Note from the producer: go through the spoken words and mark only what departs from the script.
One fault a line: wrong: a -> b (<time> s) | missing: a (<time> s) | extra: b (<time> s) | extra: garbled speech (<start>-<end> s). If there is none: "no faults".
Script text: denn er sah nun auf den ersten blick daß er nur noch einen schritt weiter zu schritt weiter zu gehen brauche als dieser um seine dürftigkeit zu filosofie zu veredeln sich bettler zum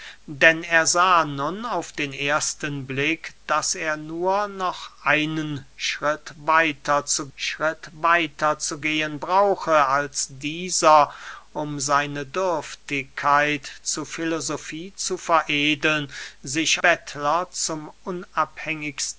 no faults